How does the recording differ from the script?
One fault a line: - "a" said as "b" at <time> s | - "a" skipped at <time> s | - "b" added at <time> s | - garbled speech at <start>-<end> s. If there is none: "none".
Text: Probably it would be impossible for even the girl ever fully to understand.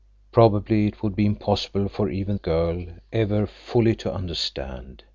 - "the" skipped at 2.4 s